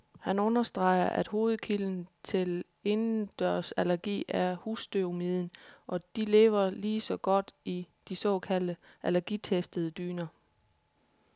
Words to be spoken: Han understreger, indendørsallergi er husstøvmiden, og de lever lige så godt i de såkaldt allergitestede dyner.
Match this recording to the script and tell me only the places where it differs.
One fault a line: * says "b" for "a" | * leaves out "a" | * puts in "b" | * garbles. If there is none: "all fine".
* puts in "at hovedkilden til"